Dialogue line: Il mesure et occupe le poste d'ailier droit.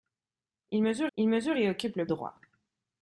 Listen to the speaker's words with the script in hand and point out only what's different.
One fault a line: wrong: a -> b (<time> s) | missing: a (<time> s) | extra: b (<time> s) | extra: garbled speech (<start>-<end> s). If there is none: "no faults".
extra: il mesure (1.2 s)
missing: poste d'ailier (2.0 s)